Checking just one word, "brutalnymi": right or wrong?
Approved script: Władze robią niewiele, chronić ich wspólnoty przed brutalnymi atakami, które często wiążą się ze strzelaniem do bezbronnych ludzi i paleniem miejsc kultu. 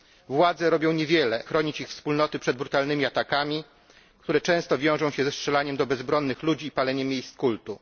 right